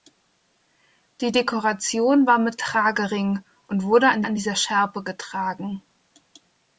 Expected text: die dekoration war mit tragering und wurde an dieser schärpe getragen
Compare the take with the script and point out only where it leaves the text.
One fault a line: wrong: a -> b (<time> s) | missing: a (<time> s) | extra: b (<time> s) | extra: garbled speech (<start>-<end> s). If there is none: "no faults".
extra: an (4.2 s)